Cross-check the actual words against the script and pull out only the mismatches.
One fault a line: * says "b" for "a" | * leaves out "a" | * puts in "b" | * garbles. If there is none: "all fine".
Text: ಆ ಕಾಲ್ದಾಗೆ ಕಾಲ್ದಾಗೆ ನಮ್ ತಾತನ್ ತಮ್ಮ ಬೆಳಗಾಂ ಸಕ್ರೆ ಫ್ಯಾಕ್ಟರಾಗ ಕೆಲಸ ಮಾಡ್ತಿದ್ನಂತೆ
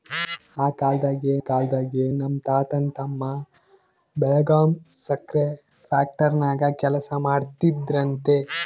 all fine